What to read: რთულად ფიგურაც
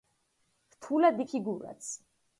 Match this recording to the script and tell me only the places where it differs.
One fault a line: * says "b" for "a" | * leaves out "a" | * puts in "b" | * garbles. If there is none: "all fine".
all fine